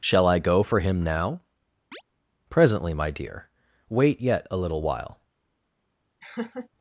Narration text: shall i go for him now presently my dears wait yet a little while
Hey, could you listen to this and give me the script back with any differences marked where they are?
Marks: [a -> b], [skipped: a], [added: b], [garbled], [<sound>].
shall i go for him now [chirp] presently my [dears -> dear] wait yet a little while [laugh]